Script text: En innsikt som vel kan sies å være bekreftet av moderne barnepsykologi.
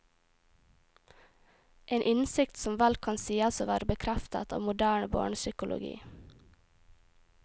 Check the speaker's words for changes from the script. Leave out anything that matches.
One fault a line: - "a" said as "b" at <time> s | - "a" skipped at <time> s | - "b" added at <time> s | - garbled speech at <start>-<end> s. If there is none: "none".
none